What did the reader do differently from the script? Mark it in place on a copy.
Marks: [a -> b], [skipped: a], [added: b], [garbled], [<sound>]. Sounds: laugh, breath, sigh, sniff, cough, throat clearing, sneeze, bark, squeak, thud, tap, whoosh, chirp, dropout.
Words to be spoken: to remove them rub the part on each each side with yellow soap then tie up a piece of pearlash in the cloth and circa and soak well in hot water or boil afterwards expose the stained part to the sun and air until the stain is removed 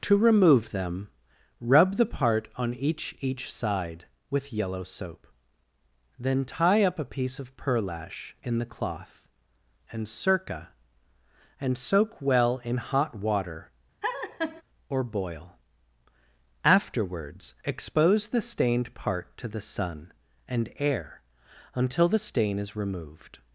to remove them rub the part on each each side with yellow soap then tie up a piece of pearlash in the cloth and circa and soak well in hot water [laugh] or boil afterwards expose the stained part to the sun and air until the stain is removed